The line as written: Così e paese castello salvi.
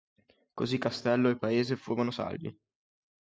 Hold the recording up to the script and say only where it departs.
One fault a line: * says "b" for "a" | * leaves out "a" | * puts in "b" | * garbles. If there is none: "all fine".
* puts in "castello"
* says "furono" for "castello"